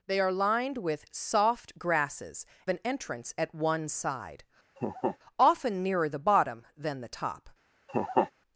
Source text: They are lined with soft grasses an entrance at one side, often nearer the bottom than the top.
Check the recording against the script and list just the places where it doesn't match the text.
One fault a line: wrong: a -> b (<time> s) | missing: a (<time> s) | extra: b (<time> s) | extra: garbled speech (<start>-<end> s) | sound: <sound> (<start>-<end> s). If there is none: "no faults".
sound: laugh (4.8-5.2 s)
sound: laugh (7.9-8.3 s)